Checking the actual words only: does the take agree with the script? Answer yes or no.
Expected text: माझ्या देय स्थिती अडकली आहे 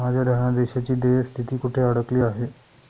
no